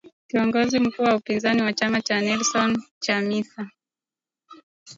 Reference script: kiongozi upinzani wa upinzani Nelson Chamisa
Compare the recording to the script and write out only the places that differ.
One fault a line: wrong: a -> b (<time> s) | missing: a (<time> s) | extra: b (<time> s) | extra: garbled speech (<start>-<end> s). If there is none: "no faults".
extra: mkuu wa (0.8 s)
wrong: upinzani -> chama cha (1.7 s)